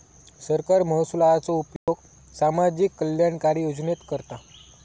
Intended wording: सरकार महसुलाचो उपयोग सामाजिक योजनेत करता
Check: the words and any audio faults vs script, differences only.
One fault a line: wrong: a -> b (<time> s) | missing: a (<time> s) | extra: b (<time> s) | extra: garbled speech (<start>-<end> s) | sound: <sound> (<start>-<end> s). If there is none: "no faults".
sound: dropout (1.8-1.9 s)
extra: कल्याणकारी (3.0 s)